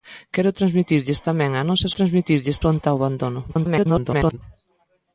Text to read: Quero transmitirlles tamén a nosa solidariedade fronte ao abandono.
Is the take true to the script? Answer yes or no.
no